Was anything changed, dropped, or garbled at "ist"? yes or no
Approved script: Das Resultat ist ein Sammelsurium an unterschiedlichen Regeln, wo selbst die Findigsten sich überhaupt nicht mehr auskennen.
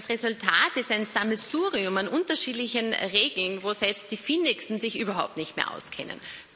no